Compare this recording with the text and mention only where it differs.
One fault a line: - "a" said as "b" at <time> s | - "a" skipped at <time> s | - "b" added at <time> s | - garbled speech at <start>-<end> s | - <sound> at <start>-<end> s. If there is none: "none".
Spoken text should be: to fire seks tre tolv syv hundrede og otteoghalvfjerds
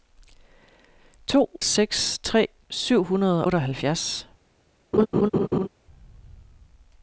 - "fire" skipped at 1.5 s
- "tolv" skipped at 2.5 s
- "og" skipped at 3.5 s
- laugh at 4.9-5.7 s